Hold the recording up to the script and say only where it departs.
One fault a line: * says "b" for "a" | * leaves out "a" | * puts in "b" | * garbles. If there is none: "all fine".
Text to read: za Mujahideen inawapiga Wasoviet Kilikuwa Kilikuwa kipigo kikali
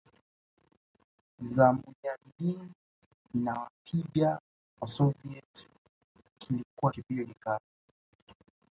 * leaves out "Kilikuwa"